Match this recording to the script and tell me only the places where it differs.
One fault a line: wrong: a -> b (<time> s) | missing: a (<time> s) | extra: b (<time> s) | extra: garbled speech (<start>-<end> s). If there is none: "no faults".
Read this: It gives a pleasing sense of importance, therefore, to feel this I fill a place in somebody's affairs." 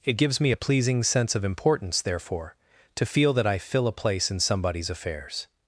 extra: me (0.4 s)
wrong: this -> that (3.3 s)